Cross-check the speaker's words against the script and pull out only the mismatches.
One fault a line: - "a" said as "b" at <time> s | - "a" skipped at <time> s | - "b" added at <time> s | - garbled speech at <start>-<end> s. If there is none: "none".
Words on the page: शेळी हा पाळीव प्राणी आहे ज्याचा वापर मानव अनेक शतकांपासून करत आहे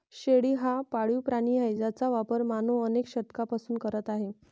none